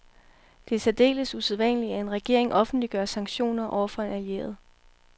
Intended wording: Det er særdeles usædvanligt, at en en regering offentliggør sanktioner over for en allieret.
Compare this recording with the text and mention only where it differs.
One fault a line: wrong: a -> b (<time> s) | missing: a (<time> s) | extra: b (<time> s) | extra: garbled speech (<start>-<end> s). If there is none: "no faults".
missing: en (2.1 s)